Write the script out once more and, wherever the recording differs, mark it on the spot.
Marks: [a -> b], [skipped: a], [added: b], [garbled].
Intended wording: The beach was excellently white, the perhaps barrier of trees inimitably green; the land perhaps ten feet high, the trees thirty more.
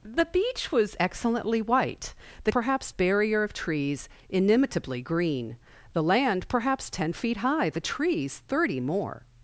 The beach was excellently white, the perhaps barrier of trees inimitably green; the land perhaps ten feet high, the trees thirty more.